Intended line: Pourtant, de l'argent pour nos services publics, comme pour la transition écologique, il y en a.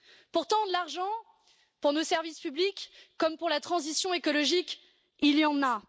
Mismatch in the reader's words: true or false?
false